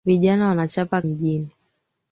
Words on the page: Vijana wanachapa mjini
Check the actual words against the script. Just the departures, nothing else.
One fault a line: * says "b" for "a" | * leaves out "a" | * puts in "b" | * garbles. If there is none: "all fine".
all fine